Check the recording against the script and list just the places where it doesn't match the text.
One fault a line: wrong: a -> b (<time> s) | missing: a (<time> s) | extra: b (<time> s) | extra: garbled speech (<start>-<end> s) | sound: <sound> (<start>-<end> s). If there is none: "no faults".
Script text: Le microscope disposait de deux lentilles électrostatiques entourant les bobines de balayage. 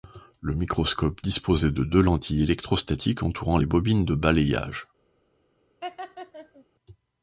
sound: laugh (5.8-6.7 s)